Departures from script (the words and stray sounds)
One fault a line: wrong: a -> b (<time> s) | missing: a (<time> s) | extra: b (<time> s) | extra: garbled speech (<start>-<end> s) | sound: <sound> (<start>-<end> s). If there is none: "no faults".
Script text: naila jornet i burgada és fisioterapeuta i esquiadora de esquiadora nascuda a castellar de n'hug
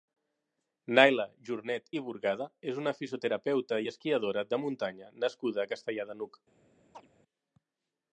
extra: una (2.8 s)
wrong: esquiadora -> muntanya (4.7 s)
sound: chirp (6.9-7.1 s)